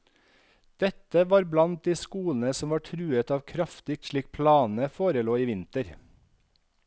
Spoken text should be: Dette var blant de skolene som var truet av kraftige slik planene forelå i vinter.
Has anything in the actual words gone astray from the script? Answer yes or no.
no